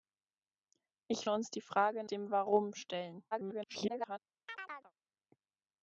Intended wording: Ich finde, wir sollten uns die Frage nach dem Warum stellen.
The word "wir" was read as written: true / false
false